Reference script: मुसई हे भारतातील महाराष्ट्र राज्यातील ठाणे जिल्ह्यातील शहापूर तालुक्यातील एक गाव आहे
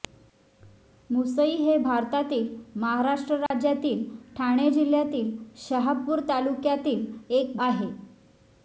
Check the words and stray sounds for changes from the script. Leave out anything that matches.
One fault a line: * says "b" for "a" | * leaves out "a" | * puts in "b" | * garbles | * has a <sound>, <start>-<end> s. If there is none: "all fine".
* has a dropout, 3.5-3.5 s
* leaves out "गाव"